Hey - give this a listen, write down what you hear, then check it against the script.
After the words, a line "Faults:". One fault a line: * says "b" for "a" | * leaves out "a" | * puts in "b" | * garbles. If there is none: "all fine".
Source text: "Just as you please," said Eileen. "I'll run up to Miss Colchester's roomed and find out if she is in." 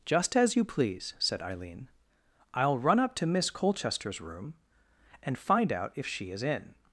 "Just as you please," said Eileen. "I'll run up to Miss Colchester's room and find out if she is in."
Faults:
* says "room" for "roomed"